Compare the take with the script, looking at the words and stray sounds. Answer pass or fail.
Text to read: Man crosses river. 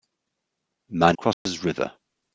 fail